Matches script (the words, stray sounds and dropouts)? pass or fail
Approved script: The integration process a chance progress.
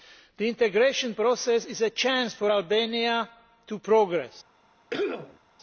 fail